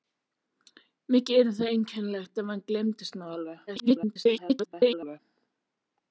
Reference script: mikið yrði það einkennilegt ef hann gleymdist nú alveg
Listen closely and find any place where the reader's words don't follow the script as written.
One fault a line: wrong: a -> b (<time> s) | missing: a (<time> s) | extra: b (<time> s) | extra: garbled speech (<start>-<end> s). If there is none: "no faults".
extra: garbled speech (3.7-5.2 s)